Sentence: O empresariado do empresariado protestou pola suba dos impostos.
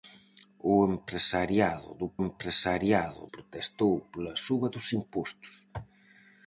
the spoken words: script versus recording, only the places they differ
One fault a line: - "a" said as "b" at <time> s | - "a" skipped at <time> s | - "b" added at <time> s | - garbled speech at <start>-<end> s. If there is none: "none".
none